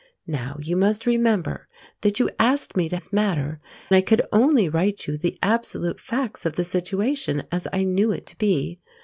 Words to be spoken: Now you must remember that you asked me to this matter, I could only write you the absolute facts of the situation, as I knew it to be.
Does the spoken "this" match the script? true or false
true